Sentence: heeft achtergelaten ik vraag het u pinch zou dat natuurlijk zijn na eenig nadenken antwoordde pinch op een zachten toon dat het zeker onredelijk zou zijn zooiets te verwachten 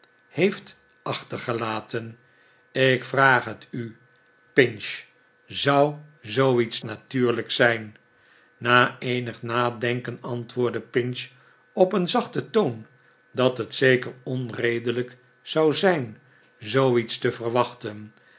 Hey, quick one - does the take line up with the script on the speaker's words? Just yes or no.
no